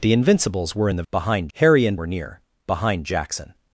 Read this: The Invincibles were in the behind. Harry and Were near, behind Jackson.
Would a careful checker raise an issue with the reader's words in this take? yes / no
no